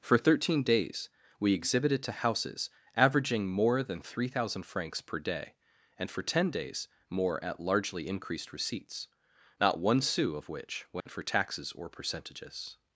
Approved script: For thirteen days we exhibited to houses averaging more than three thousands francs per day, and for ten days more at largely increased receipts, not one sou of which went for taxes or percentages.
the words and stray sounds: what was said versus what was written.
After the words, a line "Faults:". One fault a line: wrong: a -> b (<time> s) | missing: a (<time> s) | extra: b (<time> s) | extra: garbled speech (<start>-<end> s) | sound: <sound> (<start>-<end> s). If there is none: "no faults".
For thirteen days we exhibited to houses averaging more than three thousand francs per day, and for ten days more at largely increased receipts, not one sou of which went for taxes or percentages.
Faults:
wrong: thousands -> thousand (4.3 s)
sound: dropout (11.0-11.1 s)